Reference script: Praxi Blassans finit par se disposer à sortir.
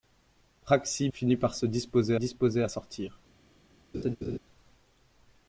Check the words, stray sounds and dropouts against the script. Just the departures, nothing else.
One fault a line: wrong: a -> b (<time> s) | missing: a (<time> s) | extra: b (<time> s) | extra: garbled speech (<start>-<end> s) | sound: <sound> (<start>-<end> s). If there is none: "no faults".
missing: Blassans (1.1 s)
extra: disposer (2.1 s)
sound: laugh (3.9-4.4 s)